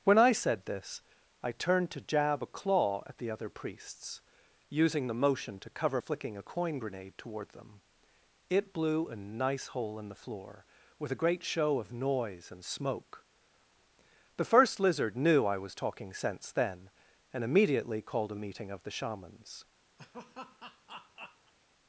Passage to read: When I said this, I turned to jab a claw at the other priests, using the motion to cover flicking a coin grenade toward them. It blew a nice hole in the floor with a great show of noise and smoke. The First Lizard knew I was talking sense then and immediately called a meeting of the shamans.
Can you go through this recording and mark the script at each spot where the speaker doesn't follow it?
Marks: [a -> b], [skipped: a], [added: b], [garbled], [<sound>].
When I said this, I turned to jab a claw at the other priests, using the motion to cover flicking a coin grenade toward them. It blew a nice hole in the floor with a great show of noise and smoke. The First Lizard knew I was talking sense then and immediately called a meeting of the shamans. [laugh]